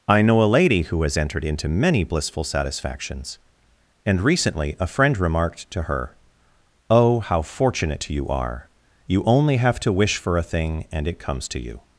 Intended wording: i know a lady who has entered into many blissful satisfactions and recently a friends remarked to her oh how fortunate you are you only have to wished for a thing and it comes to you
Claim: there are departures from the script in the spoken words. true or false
true